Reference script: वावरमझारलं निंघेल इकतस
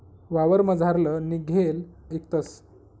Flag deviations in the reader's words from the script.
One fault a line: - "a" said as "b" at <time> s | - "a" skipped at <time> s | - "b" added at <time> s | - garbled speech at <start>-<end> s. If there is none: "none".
none